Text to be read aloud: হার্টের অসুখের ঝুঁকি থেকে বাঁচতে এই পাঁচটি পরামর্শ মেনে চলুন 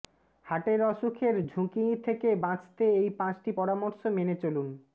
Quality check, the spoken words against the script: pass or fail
pass